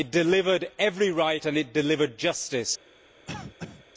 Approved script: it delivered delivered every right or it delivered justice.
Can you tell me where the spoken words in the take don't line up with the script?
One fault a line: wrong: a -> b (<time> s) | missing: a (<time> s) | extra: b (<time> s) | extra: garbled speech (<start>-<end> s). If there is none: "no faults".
missing: delivered (0.7 s)
wrong: or -> and (1.4 s)